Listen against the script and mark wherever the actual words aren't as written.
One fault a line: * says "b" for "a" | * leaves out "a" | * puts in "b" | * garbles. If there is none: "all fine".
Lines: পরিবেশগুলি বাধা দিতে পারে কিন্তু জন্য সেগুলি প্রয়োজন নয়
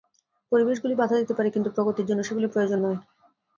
* puts in "প্রগতির"